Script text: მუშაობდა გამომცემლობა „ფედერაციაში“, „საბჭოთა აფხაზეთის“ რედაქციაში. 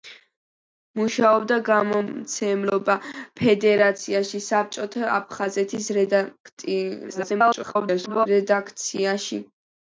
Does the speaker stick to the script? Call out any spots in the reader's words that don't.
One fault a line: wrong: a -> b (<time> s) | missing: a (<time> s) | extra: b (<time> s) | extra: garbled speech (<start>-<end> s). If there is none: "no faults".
extra: garbled speech (7.1-8.3 s)